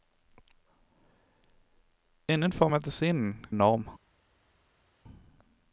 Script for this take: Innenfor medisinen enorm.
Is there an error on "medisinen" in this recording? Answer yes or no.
no